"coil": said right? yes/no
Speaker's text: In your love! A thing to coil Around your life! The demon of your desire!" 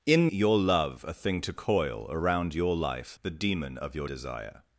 yes